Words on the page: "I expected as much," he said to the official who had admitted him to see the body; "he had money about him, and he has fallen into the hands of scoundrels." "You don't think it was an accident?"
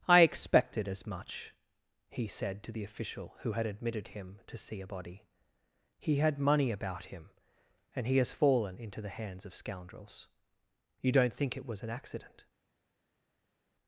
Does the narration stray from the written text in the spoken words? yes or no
yes